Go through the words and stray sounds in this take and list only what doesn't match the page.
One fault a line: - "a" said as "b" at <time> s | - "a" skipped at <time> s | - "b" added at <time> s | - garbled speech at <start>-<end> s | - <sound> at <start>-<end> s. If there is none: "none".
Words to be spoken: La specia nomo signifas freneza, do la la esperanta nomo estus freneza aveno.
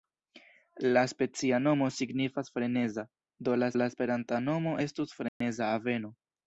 - dropout at 5.3-5.4 s